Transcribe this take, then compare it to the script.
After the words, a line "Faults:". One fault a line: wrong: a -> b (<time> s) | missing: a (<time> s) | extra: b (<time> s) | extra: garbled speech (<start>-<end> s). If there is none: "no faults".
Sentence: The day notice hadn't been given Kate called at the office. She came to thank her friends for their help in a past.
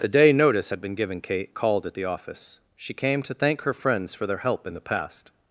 The day notice had been given Kate called at the office. She came to thank her friends for their help in the past.
Faults:
wrong: hadn't -> had (0.7 s)
wrong: a -> the (4.7 s)